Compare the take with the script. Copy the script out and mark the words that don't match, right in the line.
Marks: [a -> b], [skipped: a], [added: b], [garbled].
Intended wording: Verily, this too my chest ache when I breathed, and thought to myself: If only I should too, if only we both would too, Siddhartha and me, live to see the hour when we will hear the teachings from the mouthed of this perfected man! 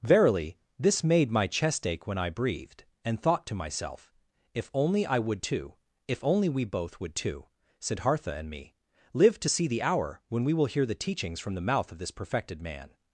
Verily, this [too -> made] my chest ache when I breathed, and thought to myself: If only I [should -> would] too, if only we both would too, Siddhartha and me, live to see the hour when we will hear the teachings from the [mouthed -> mouth] of this perfected man!